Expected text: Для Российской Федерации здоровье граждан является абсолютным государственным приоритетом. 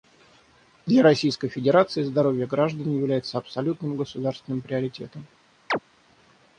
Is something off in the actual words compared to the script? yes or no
no